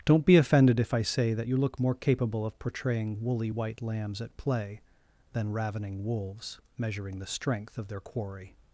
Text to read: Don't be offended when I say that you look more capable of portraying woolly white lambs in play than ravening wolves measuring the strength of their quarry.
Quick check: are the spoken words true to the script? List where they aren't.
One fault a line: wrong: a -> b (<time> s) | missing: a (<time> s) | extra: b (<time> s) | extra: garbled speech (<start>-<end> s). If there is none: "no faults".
wrong: when -> if (0.8 s)
wrong: in -> at (4.2 s)